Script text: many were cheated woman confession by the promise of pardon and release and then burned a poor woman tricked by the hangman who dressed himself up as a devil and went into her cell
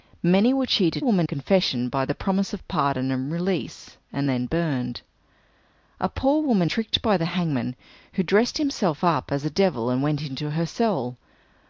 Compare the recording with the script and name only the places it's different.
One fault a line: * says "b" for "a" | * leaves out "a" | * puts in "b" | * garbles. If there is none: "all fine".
all fine